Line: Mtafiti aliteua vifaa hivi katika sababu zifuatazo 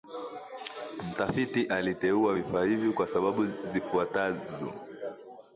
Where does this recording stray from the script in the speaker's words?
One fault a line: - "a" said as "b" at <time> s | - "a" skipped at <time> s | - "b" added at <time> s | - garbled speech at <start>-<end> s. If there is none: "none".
- "katika" said as "kwa" at 2.9 s